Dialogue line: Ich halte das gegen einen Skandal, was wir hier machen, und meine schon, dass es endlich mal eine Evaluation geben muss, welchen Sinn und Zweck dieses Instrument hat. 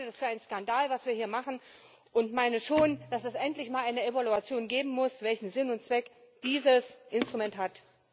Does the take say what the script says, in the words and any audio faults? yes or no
no